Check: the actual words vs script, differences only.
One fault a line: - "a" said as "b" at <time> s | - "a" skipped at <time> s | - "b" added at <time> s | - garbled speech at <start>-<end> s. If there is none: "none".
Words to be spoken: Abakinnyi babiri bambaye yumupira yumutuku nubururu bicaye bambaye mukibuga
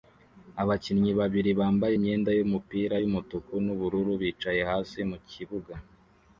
- "imyenda" added at 2.0 s
- "bambaye" said as "hasi" at 4.7 s